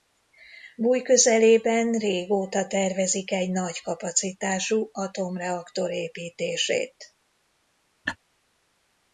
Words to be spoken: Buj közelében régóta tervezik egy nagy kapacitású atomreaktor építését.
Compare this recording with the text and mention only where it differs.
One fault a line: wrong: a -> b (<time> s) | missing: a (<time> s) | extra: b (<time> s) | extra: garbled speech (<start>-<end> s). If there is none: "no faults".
no faults